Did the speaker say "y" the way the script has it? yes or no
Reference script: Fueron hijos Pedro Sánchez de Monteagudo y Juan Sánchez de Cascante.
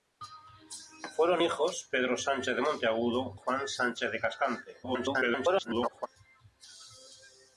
no